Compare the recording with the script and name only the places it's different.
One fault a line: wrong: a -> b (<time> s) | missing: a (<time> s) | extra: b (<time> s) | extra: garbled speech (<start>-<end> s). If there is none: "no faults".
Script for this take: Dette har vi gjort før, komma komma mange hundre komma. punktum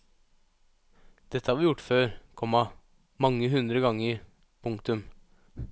missing: komma (2.6 s)
wrong: komma -> ganger (3.8 s)